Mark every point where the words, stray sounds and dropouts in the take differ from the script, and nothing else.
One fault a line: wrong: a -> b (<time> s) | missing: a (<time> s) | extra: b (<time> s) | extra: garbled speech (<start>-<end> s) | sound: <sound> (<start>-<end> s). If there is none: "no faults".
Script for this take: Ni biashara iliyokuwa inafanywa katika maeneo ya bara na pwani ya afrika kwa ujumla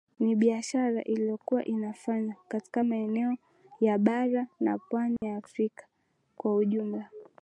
sound: dropout (5.2-5.2 s)